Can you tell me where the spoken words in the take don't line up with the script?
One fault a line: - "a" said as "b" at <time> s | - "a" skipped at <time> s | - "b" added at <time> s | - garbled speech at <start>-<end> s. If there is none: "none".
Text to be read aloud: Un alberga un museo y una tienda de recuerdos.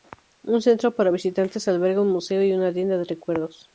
- "centro para visitantes" added at 0.6 s